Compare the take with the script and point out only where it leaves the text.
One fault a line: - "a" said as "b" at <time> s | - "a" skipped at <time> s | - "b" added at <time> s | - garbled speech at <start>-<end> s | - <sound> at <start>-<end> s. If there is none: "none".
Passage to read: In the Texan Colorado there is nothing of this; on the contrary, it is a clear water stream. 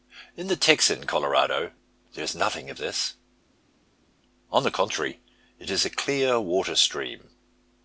none